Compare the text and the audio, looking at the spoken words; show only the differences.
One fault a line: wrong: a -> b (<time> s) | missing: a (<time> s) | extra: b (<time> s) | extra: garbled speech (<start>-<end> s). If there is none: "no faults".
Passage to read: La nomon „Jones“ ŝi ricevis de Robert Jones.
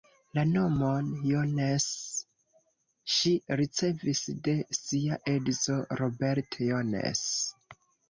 extra: sia edzo (4.8 s)